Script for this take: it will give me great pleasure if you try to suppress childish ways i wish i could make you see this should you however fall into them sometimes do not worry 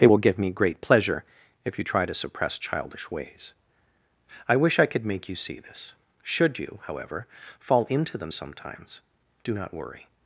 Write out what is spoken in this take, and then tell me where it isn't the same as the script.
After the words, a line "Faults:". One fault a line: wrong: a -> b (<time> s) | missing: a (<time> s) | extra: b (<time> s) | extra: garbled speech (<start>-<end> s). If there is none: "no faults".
it will give me great pleasure if you try to suppress childish ways i wish i could make you see this should you however fall into them sometimes do not worry
Faults:
no faults